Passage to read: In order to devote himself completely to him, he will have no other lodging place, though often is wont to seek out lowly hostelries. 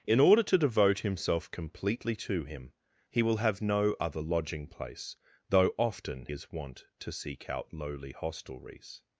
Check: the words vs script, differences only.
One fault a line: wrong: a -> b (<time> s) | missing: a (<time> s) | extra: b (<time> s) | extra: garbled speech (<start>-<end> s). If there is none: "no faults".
no faults